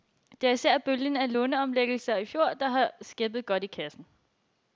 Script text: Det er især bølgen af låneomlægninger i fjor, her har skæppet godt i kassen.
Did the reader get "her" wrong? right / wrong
wrong